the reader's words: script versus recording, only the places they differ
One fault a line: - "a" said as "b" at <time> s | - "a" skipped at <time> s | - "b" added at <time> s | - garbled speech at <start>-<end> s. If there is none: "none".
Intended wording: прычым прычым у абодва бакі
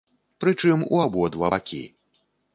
- "прычым" skipped at 0.8 s